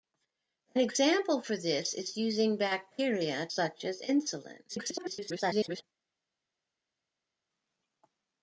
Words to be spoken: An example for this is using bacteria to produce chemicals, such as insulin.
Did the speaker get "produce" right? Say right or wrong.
wrong